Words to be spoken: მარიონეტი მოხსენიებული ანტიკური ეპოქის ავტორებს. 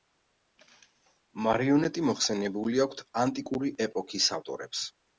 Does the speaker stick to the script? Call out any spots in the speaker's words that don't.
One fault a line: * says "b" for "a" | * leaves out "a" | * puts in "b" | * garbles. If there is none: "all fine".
* puts in "აქვთ"